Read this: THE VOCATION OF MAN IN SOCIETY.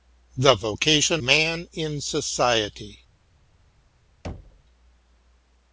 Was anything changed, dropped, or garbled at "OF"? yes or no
yes